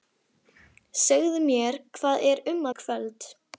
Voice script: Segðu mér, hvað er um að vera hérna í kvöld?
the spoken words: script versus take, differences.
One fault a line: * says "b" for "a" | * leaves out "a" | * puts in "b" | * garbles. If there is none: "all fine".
* leaves out "að vera hérna"